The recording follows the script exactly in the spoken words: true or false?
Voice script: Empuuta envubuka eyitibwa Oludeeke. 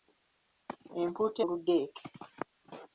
false